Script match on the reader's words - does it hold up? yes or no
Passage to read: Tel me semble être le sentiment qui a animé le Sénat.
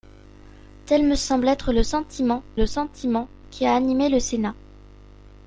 no